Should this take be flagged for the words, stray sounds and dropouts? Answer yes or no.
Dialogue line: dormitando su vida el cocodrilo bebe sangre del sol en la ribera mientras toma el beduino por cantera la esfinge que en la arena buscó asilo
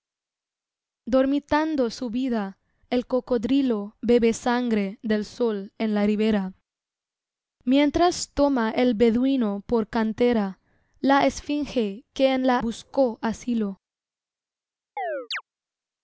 yes